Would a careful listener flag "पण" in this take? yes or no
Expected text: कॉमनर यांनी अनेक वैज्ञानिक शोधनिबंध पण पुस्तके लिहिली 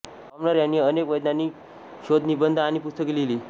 yes